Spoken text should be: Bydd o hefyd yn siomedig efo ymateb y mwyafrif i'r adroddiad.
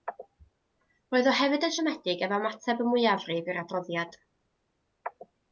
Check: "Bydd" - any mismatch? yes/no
yes